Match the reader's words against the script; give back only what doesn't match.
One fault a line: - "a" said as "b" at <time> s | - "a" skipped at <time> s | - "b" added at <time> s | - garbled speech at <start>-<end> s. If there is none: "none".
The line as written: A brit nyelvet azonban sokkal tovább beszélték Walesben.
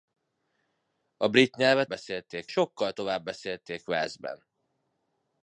- "azonban" said as "beszélték" at 1.9 s